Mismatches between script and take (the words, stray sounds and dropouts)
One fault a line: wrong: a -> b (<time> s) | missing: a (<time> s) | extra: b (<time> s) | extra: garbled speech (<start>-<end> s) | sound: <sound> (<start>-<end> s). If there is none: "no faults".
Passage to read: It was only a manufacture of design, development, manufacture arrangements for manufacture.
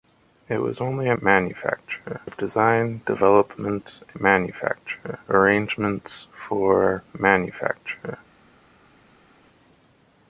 no faults